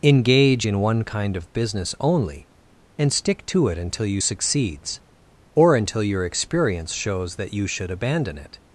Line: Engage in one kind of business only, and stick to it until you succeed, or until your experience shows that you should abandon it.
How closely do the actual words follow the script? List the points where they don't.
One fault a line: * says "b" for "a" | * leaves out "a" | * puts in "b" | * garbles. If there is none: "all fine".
* says "succeeds" for "succeed"